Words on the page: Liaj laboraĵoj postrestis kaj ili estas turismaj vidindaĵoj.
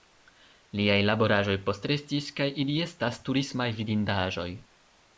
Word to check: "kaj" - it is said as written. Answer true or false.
true